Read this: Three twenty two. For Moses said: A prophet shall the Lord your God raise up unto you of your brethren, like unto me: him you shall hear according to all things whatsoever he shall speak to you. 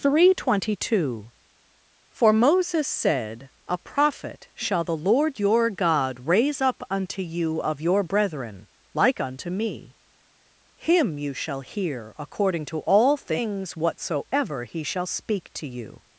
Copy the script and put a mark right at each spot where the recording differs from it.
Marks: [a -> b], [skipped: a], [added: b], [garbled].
Three twenty two. For Moses said: A prophet shall the Lord your God raise up unto you of your brethren, like unto me: him you shall hear according to all things whatsoever he shall speak to you.